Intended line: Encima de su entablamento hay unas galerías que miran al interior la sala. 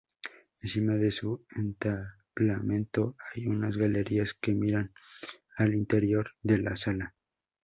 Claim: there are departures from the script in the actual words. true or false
true